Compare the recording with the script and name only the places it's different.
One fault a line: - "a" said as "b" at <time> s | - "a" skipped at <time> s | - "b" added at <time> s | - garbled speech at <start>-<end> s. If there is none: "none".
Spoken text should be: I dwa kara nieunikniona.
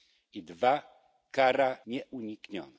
none